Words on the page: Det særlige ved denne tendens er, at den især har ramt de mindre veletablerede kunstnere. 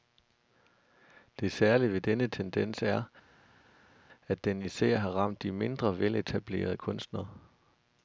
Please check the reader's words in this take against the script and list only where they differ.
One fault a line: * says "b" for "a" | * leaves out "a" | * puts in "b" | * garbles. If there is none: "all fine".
all fine